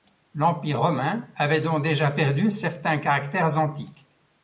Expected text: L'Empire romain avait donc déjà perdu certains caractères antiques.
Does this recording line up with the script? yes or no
yes